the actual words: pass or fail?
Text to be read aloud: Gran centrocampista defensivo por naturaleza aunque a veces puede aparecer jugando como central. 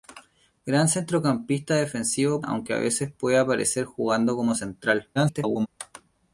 fail